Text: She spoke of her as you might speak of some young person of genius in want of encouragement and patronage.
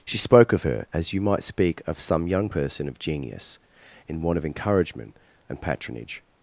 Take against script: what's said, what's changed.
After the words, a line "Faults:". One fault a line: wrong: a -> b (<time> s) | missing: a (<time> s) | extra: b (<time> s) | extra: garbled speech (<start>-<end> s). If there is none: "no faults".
She spoke of her as you might speak of some young person of genius in want of encouragement and patronage.
Faults:
no faults